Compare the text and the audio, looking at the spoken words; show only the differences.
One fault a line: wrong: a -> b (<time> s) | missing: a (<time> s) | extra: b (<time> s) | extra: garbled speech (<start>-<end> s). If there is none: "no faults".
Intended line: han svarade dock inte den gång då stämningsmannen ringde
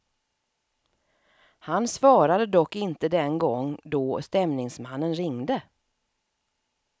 no faults